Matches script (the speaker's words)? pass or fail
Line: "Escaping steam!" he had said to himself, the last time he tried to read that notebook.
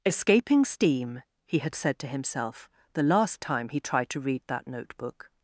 pass